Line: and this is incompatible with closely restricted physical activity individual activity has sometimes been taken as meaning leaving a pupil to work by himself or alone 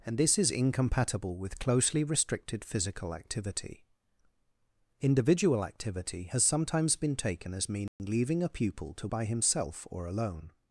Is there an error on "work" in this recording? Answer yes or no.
yes